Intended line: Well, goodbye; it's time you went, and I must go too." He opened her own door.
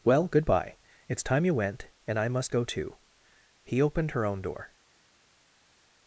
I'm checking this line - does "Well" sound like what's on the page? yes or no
yes